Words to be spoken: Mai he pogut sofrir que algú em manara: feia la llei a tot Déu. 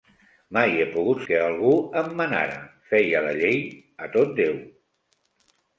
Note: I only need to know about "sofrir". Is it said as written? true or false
false